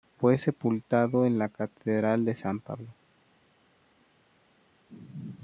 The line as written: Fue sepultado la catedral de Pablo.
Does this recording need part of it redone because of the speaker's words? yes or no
yes